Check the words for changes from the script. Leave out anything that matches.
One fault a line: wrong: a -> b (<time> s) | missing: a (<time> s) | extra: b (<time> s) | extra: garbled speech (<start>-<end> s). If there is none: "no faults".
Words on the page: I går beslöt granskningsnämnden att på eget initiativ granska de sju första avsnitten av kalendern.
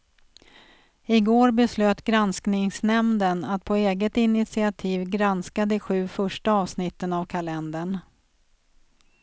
no faults